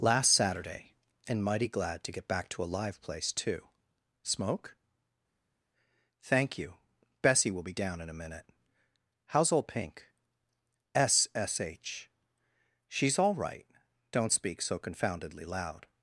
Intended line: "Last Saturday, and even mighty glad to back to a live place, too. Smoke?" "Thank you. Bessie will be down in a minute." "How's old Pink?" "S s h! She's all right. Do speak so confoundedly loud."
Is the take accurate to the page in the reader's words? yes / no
no